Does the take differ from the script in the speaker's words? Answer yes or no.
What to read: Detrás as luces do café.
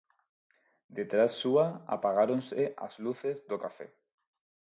yes